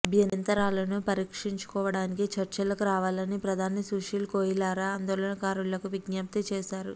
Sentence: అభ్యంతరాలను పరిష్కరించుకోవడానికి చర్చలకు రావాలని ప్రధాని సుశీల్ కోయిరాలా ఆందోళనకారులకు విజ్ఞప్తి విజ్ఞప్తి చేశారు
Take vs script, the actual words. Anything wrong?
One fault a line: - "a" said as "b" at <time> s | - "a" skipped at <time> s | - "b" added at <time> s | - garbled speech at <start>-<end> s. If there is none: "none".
- "విజ్ఞప్తి" skipped at 6.4 s